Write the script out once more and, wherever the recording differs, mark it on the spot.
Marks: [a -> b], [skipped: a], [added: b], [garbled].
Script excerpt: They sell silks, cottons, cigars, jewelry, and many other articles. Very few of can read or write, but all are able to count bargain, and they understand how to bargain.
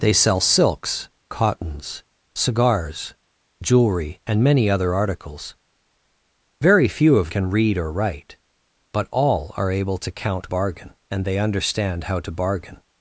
They sell silks, cottons, cigars, jewelry, and many other articles. Very few of can read or write, but all are able to count bargain, and they understand how to bargain.